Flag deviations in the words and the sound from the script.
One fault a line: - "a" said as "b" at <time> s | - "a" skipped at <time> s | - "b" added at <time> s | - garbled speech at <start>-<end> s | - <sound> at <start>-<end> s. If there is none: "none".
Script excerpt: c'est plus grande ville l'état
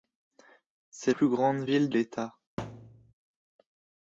- thud at 2.6-3.1 s